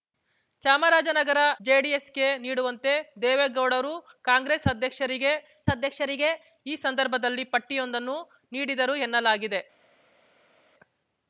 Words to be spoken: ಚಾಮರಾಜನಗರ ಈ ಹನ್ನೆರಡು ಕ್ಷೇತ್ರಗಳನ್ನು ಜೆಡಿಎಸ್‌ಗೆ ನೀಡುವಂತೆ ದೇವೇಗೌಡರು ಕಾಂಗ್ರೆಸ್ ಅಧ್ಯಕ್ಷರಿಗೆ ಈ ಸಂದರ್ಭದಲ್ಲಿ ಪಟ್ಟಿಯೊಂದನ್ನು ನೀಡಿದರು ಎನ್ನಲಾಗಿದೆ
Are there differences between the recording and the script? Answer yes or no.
yes